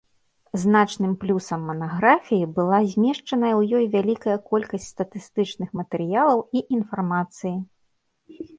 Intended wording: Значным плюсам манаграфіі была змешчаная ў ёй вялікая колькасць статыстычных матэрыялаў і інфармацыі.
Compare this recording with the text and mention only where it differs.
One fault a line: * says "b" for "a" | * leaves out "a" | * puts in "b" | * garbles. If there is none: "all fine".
all fine